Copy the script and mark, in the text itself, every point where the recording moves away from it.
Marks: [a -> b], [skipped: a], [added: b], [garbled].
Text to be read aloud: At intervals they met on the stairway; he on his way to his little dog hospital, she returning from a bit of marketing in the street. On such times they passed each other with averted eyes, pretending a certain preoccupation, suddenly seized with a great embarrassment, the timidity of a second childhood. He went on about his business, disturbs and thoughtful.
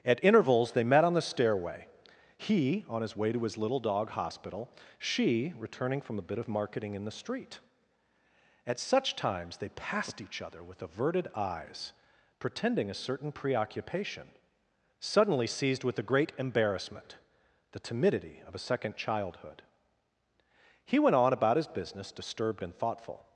At intervals they met on the stairway; he on his way to his little dog hospital, she returning from a bit of marketing in the street. [On -> At] such times they passed each other with averted eyes, pretending a certain preoccupation, suddenly seized with a great embarrassment, the timidity of a second childhood. He went on about his business, [disturbs -> disturbed] and thoughtful.